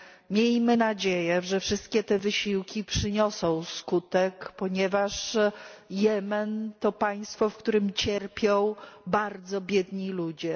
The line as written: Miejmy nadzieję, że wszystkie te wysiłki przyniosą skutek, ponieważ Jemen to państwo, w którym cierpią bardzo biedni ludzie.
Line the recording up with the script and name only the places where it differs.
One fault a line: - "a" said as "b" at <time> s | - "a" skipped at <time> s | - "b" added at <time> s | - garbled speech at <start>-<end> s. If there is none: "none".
none